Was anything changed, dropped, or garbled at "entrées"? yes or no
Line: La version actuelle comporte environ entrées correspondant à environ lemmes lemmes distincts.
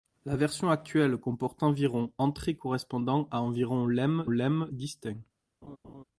no